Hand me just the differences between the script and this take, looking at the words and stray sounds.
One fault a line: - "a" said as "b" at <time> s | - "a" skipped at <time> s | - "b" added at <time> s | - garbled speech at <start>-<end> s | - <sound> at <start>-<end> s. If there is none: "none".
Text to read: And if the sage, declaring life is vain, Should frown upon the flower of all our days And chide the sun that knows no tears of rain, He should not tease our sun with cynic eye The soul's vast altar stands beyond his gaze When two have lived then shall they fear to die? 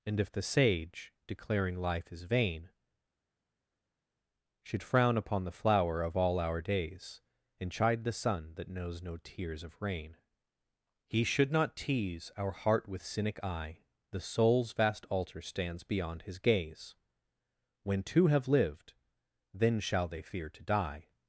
- "sun" said as "heart" at 12.5 s